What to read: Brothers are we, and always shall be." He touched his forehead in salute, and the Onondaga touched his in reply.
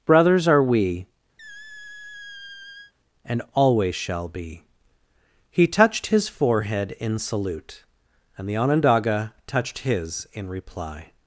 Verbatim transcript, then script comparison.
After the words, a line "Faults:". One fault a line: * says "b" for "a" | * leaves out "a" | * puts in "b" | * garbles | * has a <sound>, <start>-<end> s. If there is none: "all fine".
Brothers are we, and always shall be." He touched his forehead in salute, and the Onondaga touched his in reply.
Faults:
* has a squeak, 1.4-2.9 s